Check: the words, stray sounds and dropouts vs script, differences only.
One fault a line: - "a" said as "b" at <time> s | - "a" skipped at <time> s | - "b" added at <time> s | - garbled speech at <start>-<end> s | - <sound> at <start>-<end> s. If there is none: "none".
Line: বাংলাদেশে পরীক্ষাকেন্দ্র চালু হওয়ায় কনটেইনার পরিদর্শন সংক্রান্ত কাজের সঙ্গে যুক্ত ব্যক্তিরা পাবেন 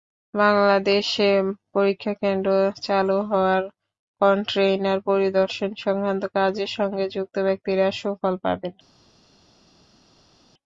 - "সুফল" added at 8.0 s